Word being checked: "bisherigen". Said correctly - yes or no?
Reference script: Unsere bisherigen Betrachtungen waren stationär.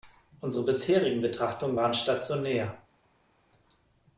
yes